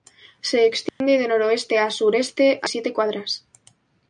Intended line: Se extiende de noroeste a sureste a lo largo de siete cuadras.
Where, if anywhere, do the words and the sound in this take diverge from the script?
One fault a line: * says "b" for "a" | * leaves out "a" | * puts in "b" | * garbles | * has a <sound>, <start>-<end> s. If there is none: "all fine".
* has a dropout, 0.9-1.0 s
* leaves out "lo largo de"